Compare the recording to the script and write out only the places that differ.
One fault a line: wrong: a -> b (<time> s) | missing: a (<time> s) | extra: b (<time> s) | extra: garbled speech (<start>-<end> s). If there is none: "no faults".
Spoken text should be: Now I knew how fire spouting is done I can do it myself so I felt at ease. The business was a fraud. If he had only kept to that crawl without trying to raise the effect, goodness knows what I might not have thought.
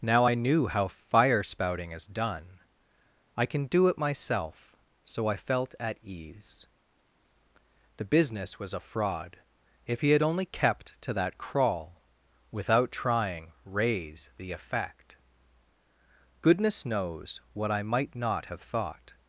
missing: to (13.5 s)